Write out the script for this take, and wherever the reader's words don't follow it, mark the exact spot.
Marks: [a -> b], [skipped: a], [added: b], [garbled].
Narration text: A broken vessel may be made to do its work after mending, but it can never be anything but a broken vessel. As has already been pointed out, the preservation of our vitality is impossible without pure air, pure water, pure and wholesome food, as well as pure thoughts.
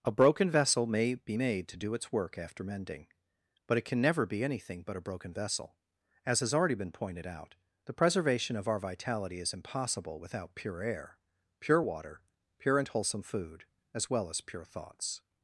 A broken vessel may be made to do its work after mending, but it can never be anything but a broken vessel. As has already been pointed out, the preservation of our vitality is impossible without pure air, pure water, pure and wholesome food, as well as pure thoughts.